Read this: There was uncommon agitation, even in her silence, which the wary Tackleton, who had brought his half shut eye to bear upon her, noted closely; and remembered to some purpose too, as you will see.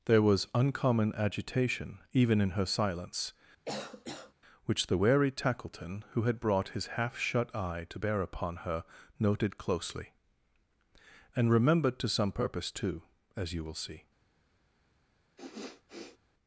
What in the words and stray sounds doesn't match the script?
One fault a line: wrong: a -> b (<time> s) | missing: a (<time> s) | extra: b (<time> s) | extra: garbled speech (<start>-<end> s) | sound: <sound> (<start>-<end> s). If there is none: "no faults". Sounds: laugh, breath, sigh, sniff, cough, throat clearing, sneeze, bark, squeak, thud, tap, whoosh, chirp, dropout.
sound: cough (3.6-4.3 s)
sound: sniff (15.4-16.2 s)